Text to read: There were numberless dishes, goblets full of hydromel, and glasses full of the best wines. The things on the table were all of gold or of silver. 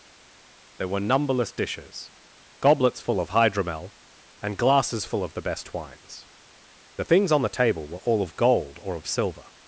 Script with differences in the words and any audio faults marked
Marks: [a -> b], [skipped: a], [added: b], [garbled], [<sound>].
There were numberless dishes, goblets full of hydromel, and glasses full of the best wines. The things on the table were all of gold or of silver.